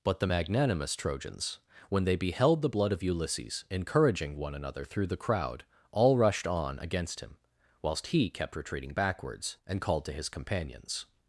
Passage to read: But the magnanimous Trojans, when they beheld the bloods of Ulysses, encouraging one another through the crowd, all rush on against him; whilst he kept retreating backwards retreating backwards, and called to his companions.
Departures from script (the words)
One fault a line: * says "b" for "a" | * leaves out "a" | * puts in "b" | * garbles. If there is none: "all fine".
* says "blood" for "bloods"
* says "rushed" for "rush"
* leaves out "retreating backwards"